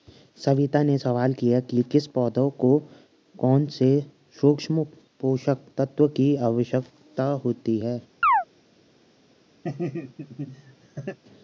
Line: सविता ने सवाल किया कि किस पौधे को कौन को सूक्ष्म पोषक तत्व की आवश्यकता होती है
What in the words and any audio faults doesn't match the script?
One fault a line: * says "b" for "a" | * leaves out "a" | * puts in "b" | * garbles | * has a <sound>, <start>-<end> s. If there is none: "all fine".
* says "से" for "को"
* has a chirp, 8.2-8.4 s
* has a laugh, 9.6-11.2 s